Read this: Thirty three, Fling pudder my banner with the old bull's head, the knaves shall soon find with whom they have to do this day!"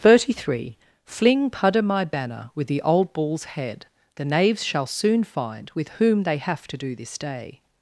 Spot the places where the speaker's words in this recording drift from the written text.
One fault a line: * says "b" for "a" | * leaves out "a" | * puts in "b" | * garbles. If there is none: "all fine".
all fine